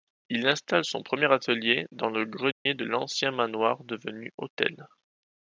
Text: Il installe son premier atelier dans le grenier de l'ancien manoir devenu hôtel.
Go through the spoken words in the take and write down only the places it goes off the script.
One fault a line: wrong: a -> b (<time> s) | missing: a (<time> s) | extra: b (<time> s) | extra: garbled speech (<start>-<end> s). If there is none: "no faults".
no faults